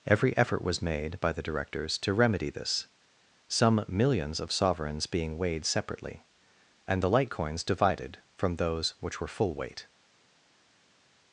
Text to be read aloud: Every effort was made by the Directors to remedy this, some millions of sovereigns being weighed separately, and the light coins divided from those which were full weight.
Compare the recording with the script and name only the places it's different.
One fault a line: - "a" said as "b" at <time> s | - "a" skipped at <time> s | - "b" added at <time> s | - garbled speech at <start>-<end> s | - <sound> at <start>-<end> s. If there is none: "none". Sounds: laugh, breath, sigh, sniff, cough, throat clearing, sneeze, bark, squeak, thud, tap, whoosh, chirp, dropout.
none